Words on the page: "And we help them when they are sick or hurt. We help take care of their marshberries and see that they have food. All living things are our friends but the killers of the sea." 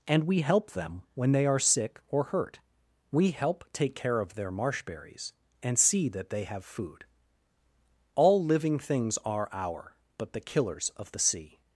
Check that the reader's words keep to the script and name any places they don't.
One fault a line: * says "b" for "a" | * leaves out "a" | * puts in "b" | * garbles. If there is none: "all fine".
* leaves out "friends"